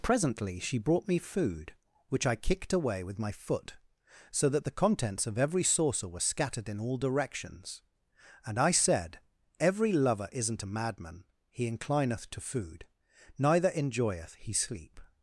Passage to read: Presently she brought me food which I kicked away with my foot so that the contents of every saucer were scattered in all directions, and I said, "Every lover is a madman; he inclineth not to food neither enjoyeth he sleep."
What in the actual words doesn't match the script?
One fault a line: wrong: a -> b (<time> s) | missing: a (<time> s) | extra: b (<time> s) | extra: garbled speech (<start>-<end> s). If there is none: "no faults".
wrong: is -> isn't (10.3 s)
missing: not (12.3 s)